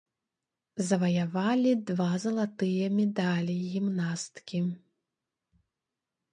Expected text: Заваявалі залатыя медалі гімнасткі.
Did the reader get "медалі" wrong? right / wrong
right